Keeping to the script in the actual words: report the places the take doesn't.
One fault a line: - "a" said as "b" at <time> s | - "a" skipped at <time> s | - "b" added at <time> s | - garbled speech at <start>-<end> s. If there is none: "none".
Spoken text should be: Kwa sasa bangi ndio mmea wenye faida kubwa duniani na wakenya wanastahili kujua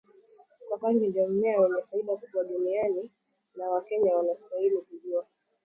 - "sasa" skipped at 0.8 s